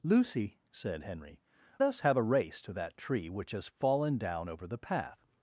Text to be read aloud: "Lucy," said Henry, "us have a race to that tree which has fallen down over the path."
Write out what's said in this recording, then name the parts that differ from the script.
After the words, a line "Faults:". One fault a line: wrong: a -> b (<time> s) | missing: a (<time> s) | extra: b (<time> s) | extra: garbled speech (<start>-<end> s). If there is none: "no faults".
"Lucy," said Henry, "us have a race to that tree which has fallen down over the path."
Faults:
no faults